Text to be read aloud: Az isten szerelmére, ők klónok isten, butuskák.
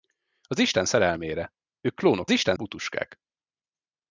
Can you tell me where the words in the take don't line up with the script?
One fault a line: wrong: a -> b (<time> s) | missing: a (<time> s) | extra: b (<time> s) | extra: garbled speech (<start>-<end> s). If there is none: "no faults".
no faults